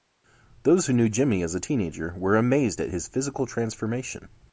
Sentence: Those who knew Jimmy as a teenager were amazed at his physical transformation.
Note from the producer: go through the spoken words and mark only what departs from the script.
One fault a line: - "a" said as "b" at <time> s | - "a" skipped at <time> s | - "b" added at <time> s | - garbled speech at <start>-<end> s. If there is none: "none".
none